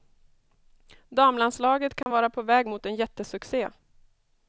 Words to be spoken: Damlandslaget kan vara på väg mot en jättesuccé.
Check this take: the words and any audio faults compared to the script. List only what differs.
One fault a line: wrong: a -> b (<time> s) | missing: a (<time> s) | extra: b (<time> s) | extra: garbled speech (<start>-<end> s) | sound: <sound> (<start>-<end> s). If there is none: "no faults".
sound: dropout (2.0-2.1 s)